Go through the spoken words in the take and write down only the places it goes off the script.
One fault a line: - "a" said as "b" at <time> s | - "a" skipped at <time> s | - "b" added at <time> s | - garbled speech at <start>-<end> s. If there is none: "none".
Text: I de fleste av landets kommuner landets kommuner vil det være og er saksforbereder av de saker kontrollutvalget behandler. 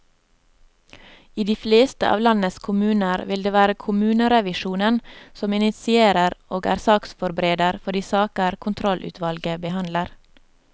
- "landets kommuner" skipped at 3.2 s
- "kommunerevisjonen som initierer" added at 3.9 s
- "av" said as "for" at 7.8 s